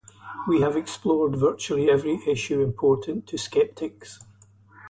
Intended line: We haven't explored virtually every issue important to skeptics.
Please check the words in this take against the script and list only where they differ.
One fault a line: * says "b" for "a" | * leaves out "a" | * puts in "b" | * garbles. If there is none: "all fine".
* says "have" for "haven't"